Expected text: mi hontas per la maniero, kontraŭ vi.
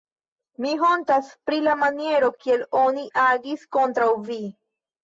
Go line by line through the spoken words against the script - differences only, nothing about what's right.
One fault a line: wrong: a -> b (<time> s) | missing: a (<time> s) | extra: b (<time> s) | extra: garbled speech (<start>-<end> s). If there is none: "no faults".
wrong: per -> pri (1.5 s)
extra: kiel oni agis (2.5 s)